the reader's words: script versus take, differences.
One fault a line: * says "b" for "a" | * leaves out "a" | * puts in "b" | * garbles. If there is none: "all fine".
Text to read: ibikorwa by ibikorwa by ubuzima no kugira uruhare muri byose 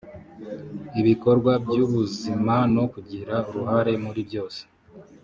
* leaves out "ibikorwa by"